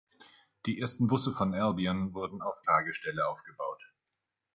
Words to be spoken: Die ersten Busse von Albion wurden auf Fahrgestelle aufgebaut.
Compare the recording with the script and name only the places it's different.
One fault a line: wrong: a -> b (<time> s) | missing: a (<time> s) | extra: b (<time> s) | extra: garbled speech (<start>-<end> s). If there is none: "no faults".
no faults